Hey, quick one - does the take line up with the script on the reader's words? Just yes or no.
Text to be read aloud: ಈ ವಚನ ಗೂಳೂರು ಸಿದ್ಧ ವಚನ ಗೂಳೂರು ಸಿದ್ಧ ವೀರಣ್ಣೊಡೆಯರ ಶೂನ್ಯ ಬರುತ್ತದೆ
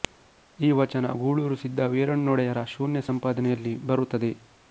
no